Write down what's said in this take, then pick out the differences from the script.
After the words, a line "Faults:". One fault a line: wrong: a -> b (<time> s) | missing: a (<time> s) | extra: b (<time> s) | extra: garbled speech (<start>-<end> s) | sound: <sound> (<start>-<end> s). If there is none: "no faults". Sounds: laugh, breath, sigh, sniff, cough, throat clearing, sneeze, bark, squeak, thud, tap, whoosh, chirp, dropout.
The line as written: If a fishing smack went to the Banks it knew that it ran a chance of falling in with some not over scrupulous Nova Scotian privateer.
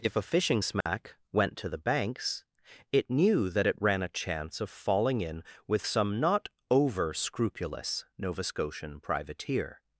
If a fishing smack went to the Banks it knew that it ran a chance of falling in with some not over scrupulous Nova Scotian privateer.
Faults:
sound: dropout (0.8-0.9 s)